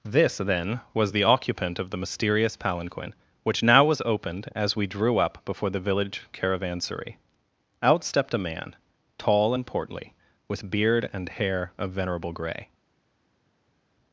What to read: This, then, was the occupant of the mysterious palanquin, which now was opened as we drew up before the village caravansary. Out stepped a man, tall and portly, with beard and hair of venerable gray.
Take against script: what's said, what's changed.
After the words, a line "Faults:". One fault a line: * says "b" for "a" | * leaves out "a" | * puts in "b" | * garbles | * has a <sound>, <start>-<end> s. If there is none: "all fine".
This, then, was the occupant of the mysterious palanquin, which now was opened as we drew up before the village caravansary. Out stepped a man, tall and portly, with beard and hair of venerable gray.
Faults:
all fine